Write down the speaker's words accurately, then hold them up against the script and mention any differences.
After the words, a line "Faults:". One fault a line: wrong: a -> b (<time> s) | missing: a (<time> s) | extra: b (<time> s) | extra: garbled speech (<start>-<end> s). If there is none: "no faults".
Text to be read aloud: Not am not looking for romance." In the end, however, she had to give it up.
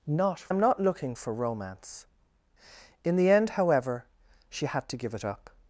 Not am not looking for romance." In the end, however, she had to give it up.
Faults:
no faults